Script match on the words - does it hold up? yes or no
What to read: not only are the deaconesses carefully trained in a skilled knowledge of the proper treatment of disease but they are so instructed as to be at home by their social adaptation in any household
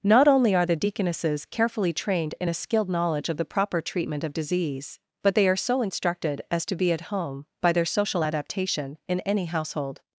yes